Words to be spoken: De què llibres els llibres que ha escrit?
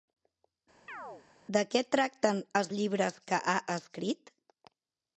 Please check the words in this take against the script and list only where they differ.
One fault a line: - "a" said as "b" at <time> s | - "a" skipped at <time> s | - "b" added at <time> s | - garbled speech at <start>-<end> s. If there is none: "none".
- "llibres" said as "tracten" at 2.0 s